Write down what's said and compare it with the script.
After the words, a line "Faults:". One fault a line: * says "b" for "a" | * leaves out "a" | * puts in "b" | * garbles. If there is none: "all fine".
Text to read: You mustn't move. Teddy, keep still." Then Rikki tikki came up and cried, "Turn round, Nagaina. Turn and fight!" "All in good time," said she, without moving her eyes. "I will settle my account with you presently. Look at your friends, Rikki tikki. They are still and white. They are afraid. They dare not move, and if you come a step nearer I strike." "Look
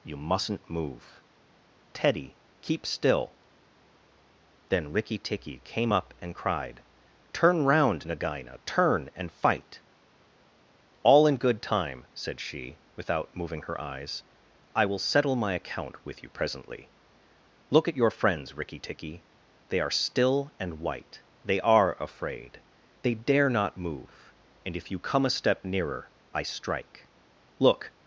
You mustn't move. Teddy, keep still." Then Rikki tikki came up and cried, "Turn round, Nagaina. Turn and fight!" "All in good time," said she, without moving her eyes. "I will settle my account with you presently. Look at your friends, Rikki tikki. They are still and white. They are afraid. They dare not move, and if you come a step nearer I strike." "Look
Faults:
all fine